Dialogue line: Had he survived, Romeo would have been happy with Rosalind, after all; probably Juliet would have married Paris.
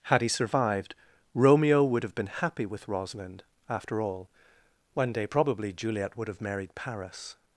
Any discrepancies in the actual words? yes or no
yes